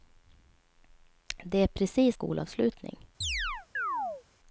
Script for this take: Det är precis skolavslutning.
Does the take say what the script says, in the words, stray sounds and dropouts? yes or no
no